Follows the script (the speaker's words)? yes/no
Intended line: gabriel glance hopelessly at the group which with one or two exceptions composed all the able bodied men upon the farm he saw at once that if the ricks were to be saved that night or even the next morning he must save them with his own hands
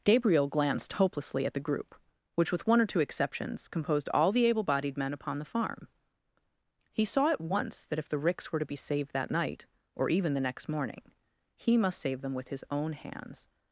no